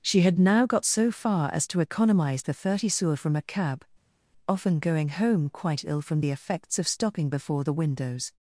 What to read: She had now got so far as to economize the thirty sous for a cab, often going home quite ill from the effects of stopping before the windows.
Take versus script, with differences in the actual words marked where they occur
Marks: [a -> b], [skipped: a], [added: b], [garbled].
She had now got so far as to economize the thirty sous [for -> from] a cab, often going home quite ill from the effects of stopping before the windows.